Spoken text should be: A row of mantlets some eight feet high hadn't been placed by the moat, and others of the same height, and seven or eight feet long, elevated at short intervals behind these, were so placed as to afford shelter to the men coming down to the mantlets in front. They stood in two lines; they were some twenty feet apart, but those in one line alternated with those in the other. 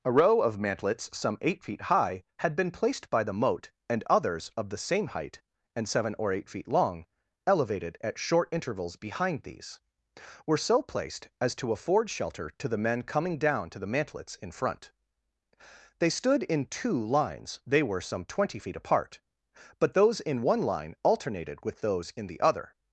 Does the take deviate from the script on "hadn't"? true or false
true